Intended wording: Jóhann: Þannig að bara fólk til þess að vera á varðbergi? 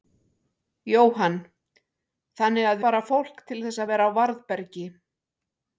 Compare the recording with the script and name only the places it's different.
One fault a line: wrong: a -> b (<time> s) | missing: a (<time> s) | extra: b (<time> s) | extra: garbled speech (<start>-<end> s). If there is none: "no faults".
no faults